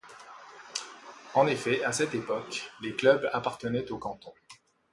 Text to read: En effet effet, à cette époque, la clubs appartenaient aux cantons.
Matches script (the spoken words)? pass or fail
fail